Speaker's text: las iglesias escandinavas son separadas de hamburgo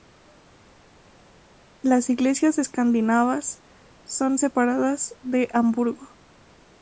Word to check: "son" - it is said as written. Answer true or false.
true